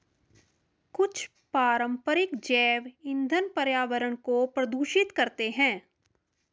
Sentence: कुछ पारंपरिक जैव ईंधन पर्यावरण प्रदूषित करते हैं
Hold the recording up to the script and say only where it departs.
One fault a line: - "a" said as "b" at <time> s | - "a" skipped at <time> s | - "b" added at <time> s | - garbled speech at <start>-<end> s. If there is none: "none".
- "को" added at 4.2 s